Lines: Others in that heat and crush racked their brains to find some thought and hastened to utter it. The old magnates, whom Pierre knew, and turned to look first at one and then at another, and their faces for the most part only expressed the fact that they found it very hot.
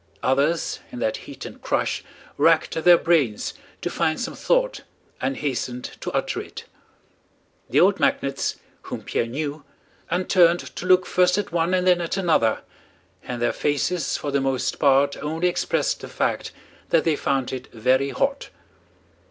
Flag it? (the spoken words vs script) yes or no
no